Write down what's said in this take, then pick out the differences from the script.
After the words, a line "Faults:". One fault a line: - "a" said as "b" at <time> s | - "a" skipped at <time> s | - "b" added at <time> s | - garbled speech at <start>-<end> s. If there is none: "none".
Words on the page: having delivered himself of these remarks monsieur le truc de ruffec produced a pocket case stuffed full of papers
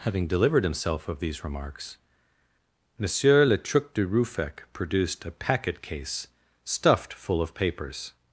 having delivered himself of these remarks monsieur le truc de ruffec produced a packet case stuffed full of papers
Faults:
- "pocket" said as "packet" at 5.3 s